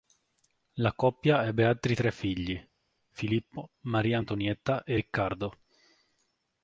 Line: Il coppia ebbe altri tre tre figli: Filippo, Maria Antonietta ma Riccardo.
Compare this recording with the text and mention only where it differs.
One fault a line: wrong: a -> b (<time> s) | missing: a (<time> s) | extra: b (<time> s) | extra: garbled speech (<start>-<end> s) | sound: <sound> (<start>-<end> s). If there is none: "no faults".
wrong: Il -> La (0.8 s)
missing: tre (2.1 s)
wrong: ma -> e (4.8 s)